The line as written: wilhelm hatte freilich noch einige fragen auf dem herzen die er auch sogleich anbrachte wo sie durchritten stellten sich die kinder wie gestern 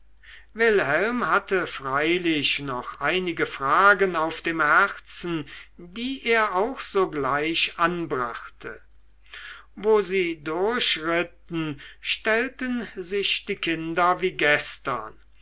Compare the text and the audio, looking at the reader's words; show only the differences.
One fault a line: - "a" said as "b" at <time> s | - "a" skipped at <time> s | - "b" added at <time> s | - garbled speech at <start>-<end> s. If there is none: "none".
none